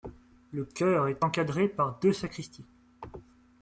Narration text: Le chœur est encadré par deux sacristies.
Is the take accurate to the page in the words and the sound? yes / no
yes